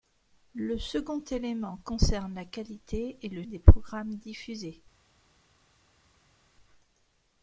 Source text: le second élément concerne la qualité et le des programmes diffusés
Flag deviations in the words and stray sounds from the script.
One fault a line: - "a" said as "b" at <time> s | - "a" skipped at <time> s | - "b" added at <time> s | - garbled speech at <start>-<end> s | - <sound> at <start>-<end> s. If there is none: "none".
none